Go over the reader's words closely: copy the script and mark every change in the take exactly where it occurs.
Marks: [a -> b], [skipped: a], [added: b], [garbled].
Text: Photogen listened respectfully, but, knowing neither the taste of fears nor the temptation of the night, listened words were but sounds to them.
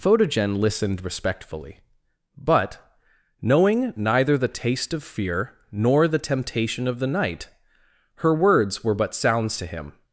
Photogen listened respectfully, but, knowing neither the taste of [fears -> fear] nor the temptation of the night, [listened -> her] words were but sounds to [them. -> him]